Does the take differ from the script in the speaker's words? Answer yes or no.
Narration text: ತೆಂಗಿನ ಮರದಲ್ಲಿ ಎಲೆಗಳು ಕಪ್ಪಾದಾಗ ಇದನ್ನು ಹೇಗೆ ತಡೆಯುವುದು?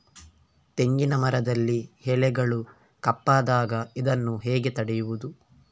no